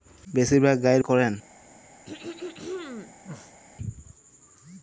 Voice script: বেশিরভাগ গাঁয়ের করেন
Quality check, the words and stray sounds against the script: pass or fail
fail